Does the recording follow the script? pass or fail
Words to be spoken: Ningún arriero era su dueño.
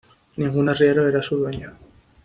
pass